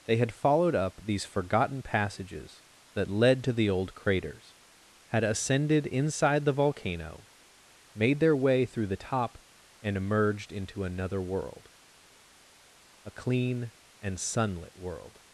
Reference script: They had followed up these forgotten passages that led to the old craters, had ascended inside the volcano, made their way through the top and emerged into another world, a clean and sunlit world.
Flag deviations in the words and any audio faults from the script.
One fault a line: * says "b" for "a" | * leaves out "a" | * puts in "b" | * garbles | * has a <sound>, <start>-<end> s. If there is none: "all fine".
all fine